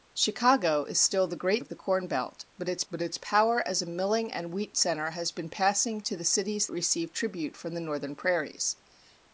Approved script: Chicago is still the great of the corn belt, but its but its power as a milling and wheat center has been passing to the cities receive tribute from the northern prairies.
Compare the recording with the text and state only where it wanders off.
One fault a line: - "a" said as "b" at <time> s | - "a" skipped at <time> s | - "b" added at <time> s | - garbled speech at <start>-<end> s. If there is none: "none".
none